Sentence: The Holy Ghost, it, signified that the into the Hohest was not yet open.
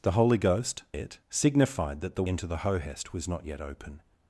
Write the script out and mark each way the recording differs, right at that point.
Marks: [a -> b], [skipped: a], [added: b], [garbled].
The Holy Ghost, it, signified that the into the Hohest was not yet open.